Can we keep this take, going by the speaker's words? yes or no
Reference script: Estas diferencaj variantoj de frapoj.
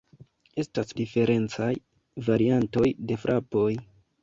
yes